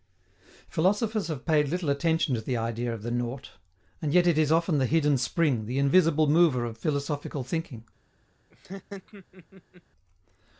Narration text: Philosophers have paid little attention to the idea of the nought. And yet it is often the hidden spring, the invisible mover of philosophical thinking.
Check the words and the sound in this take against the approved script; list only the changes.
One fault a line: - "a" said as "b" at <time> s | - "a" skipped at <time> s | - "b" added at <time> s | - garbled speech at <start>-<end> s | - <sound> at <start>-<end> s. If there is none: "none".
- laugh at 8.5-9.8 s